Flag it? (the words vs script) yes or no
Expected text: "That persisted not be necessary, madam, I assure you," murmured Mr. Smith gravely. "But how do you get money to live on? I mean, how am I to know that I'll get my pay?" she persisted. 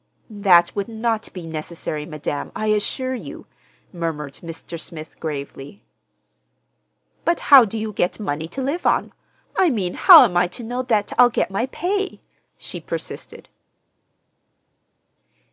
yes